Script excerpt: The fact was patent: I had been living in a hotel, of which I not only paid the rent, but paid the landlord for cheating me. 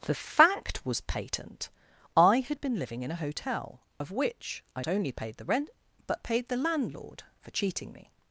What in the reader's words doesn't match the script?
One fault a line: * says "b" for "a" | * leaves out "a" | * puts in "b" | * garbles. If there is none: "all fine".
* leaves out "not"